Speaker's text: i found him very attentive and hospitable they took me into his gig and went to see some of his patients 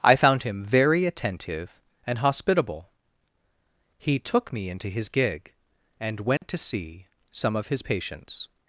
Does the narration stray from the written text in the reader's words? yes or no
yes